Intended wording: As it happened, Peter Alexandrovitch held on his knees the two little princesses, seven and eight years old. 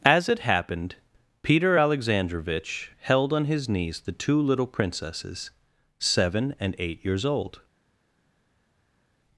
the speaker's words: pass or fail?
pass